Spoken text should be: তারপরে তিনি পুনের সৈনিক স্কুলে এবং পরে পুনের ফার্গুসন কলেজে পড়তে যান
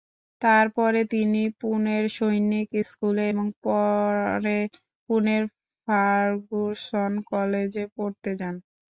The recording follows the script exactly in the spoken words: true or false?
true